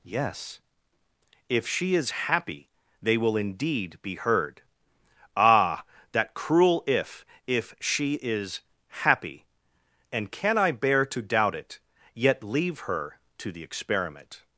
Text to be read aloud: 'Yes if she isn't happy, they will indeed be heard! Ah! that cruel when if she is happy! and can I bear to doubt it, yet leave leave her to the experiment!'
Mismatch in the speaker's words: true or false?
true